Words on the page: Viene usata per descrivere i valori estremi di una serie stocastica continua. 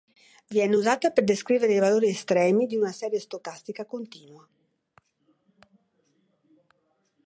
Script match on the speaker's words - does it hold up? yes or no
yes